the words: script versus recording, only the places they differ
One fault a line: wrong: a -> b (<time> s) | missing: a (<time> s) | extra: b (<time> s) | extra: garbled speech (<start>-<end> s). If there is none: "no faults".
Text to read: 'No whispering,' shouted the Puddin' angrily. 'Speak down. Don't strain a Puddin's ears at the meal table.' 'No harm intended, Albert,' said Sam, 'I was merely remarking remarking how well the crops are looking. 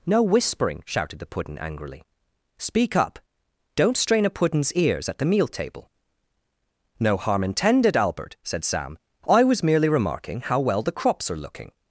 wrong: down -> up (3.0 s)
missing: remarking (10.4 s)